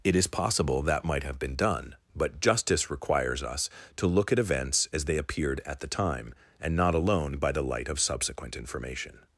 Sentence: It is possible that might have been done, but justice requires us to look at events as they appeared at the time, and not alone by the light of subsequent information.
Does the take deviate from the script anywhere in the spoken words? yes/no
no